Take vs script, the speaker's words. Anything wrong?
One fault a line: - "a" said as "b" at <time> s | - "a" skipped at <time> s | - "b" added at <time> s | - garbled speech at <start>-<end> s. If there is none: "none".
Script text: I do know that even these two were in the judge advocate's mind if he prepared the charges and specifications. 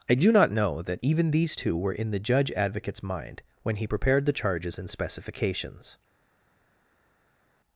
- "not" added at 0.3 s
- "if" said as "when" at 3.6 s